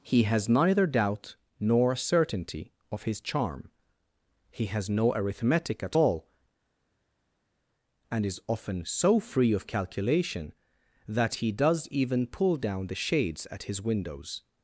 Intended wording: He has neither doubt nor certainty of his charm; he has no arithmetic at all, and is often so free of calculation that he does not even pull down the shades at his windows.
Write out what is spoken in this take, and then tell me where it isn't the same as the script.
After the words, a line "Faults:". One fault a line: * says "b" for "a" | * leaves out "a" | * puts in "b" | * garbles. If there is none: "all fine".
He has neither doubt nor certainty of his charm; he has no arithmetic at all, and is often so free of calculation that he does even pull down the shades at his windows.
Faults:
* leaves out "not"